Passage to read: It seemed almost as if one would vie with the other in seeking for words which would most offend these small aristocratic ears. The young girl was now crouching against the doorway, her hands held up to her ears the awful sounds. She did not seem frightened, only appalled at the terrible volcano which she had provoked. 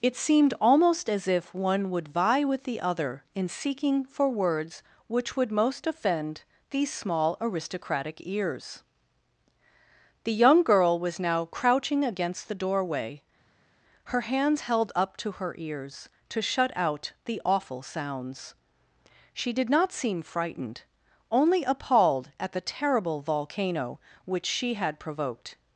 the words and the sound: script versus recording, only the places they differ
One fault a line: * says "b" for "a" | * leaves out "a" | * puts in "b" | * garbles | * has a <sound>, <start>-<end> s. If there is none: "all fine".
* puts in "to shut out"